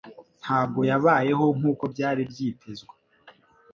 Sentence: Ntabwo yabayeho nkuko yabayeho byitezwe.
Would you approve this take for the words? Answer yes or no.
no